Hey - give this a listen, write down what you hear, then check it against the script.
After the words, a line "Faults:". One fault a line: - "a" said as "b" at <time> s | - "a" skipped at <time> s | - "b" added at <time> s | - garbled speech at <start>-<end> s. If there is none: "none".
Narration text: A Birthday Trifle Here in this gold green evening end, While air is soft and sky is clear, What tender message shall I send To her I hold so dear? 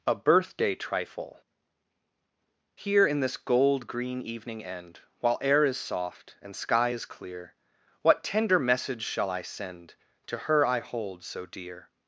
A Birthday Trifle Here in this gold green evening end, While air is soft and sky is clear, What tender message shall I send To her I hold so dear?
Faults:
none